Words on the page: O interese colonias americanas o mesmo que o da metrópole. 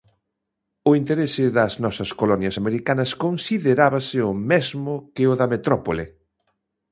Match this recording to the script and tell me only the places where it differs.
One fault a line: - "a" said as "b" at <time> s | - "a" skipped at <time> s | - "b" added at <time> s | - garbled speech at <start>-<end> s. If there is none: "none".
- "das nosas" added at 1.6 s
- "considerábase" added at 3.2 s